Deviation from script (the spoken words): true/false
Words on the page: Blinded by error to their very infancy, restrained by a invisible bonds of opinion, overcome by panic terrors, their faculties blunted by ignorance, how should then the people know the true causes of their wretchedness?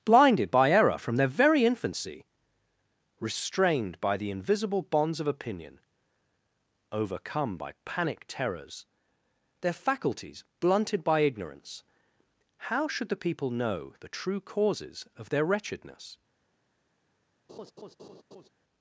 true